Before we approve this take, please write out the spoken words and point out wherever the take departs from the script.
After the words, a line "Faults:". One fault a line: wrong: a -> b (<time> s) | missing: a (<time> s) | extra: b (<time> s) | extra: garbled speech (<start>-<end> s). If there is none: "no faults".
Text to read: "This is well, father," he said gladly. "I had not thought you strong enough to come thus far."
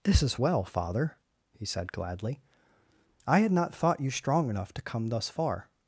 "This is well, father," he said gladly. "I had not thought you strong enough to come thus far."
Faults:
no faults